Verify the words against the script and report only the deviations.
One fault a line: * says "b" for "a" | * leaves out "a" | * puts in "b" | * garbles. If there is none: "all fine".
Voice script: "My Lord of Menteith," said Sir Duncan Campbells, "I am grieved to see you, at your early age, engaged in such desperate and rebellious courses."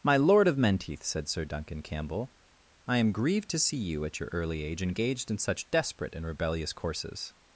* says "Campbell" for "Campbells"